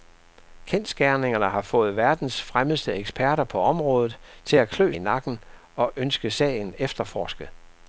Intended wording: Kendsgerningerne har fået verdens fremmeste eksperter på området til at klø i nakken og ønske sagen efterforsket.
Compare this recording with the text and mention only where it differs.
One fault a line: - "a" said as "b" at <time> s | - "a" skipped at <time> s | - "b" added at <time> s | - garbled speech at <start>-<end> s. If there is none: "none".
none